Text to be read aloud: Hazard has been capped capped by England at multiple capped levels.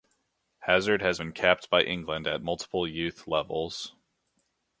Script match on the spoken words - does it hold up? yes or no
no